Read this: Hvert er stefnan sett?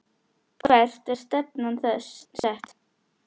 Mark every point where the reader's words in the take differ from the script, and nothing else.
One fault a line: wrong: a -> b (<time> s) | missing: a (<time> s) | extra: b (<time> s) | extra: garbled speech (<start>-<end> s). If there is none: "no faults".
no faults